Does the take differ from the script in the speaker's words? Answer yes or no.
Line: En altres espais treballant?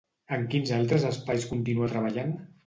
yes